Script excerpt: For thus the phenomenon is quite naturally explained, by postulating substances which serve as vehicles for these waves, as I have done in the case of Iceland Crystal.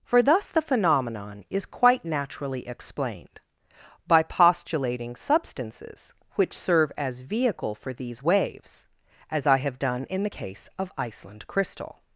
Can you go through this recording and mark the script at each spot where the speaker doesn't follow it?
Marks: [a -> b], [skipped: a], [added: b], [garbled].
For thus the phenomenon is quite naturally explained, by postulating substances which serve as [vehicles -> vehicle] for these waves, as I have done in the case of Iceland Crystal.